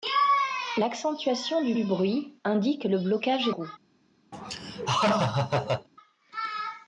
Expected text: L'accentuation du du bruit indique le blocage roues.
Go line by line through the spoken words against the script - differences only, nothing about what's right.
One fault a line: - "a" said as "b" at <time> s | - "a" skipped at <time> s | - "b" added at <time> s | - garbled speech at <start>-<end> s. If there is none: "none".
none